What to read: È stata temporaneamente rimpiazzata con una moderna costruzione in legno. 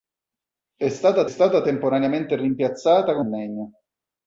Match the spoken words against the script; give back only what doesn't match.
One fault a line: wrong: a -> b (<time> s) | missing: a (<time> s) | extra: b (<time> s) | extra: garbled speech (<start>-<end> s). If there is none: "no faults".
extra: stata (1.2 s)
missing: una moderna costruzione (3.2 s)